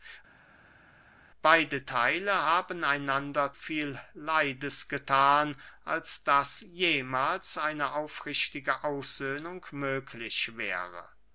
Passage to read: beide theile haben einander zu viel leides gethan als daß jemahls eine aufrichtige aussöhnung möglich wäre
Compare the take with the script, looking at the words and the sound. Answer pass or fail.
fail